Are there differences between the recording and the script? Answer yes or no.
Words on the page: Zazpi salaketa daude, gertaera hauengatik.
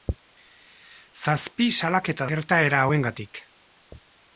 yes